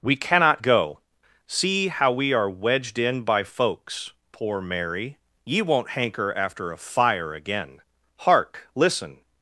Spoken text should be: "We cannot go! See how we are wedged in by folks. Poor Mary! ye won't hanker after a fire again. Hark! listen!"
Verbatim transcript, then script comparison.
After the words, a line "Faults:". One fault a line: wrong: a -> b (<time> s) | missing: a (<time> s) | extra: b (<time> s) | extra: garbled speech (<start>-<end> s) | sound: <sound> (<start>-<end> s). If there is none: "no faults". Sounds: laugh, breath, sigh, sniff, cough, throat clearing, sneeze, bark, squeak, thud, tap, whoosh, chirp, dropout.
"We cannot go! See how we are wedged in by folks. Poor Mary! ye won't hanker after a fire again. Hark! listen!"
Faults:
no faults